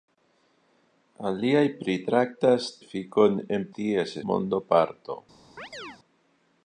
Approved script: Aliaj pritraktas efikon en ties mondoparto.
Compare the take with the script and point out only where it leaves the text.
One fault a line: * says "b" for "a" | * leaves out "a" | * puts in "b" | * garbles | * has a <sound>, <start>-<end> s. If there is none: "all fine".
* has a chirp, 5.6-6.0 s